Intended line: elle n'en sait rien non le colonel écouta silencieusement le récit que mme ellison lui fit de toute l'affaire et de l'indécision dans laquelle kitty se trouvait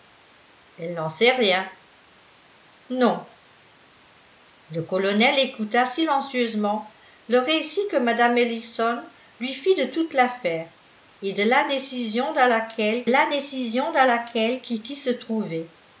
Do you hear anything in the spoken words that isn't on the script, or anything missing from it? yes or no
yes